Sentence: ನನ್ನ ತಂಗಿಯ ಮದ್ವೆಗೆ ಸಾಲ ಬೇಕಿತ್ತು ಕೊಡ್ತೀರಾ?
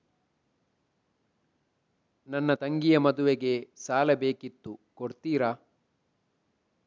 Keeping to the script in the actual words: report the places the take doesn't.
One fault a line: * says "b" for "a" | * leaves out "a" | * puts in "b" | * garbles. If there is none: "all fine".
all fine